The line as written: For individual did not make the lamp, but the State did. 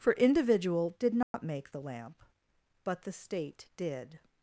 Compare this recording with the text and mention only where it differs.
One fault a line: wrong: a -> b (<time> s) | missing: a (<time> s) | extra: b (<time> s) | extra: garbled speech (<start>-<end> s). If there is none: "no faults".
no faults